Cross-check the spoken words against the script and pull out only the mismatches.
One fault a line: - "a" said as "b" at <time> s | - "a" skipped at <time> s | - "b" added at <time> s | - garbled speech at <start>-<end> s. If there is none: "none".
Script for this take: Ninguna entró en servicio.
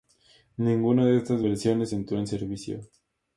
- "de estas versiones" added at 1.1 s